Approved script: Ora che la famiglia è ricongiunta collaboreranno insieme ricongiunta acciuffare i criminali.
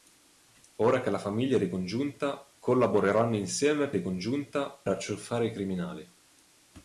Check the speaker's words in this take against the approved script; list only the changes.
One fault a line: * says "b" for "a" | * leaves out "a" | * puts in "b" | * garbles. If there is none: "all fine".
all fine